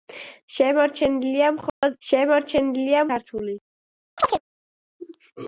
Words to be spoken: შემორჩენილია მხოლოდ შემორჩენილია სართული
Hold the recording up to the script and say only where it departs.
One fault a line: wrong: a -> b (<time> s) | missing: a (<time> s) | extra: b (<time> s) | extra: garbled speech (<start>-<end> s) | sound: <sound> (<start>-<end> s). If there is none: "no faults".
sound: dropout (1.7-1.8 s)
sound: chirp (4.2-4.4 s)